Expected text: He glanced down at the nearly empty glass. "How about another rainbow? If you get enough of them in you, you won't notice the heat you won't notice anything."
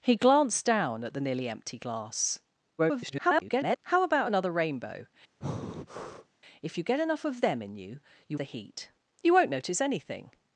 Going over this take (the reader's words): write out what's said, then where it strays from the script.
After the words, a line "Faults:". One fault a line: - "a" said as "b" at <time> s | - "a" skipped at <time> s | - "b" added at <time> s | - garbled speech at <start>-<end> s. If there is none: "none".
He glanced down at the nearly empty glass. [garbled] "How about another rainbow? If you get enough of them in you, you the heat you won't notice anything."
Faults:
- garbled speech at 2.8-3.8 s
- "won't notice" skipped at 8.4 s